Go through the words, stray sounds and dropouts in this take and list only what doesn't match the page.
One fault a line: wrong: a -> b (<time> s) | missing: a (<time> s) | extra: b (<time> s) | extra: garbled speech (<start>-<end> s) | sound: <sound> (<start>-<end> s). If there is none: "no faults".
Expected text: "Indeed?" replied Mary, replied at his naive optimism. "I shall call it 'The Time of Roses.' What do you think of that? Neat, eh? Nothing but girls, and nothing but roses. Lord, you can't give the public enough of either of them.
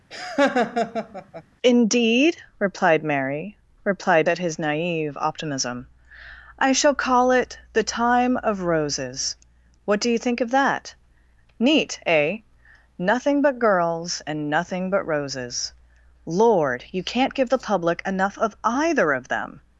sound: laugh (0.1-1.4 s)